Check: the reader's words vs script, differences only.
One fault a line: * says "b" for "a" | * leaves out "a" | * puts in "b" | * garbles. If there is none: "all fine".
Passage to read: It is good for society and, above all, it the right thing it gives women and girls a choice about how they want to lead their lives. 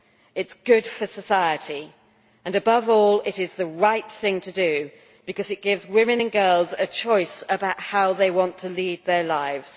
* puts in "is"
* puts in "to do because"